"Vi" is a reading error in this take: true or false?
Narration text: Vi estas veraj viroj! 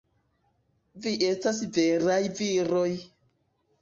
false